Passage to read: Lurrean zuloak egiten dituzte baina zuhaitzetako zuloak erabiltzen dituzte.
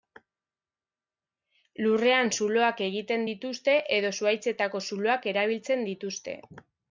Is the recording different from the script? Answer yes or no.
yes